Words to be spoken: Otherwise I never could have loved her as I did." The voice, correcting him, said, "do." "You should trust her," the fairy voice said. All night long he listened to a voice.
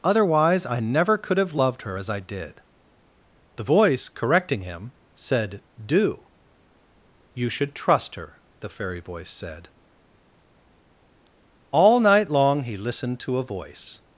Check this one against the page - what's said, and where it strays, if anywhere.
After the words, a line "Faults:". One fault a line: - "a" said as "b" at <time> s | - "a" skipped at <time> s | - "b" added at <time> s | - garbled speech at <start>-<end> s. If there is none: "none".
Otherwise I never could have loved her as I did." The voice, correcting him, said, "do." "You should trust her," the fairy voice said. All night long he listened to a voice.
Faults:
none